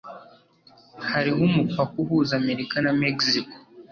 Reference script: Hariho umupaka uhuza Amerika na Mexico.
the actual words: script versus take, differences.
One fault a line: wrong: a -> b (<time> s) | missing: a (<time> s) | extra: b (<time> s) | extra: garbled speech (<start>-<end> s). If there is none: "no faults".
no faults